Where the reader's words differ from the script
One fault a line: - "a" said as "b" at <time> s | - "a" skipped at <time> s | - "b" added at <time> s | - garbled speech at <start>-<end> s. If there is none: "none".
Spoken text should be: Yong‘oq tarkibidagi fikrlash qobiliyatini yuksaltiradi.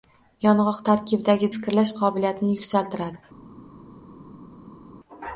none